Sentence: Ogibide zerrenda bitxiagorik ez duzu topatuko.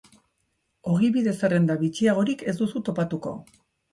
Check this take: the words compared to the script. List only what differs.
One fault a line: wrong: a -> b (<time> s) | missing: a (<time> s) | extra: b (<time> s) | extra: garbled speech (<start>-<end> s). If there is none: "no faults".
no faults